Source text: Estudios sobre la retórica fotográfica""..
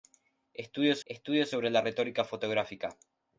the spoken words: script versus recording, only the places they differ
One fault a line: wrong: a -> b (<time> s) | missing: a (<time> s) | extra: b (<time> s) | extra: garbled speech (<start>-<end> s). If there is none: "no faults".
extra: estudios (1.1 s)